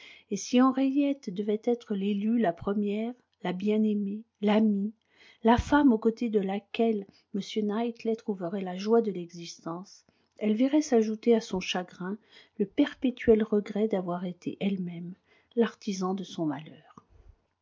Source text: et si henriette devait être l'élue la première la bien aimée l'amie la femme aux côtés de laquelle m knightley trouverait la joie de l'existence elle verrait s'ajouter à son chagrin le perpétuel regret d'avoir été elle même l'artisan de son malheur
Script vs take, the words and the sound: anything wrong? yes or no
no